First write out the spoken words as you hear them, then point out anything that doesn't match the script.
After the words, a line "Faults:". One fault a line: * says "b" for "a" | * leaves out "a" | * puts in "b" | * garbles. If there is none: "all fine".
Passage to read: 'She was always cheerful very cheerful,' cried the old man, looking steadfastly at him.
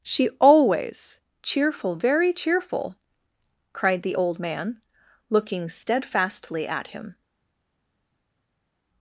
'She always cheerful very cheerful,' cried the old man, looking steadfastly at him.
Faults:
* leaves out "was"